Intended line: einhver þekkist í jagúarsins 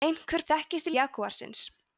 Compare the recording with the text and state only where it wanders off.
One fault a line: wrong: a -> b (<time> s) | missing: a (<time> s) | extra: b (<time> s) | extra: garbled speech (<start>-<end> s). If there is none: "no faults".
no faults